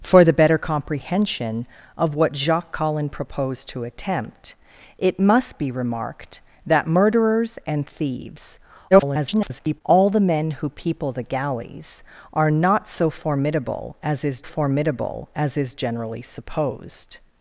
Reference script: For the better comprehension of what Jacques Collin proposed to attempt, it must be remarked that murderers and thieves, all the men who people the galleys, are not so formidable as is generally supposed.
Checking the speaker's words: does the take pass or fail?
fail